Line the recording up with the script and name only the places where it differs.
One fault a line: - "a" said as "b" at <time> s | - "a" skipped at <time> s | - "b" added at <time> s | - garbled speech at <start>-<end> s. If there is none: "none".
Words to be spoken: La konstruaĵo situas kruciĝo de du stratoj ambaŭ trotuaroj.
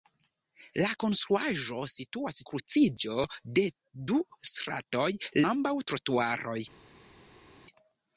none